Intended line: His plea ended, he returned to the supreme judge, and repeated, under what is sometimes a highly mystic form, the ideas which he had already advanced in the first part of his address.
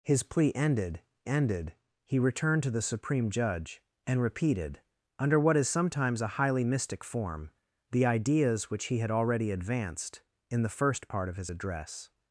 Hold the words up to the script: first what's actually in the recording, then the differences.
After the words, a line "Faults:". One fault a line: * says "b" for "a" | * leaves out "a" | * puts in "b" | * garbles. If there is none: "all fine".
His plea ended ended, he returned to the supreme judge, and repeated, under what is sometimes a highly mystic form, the ideas which he had already advanced in the first part of his address.
Faults:
* puts in "ended"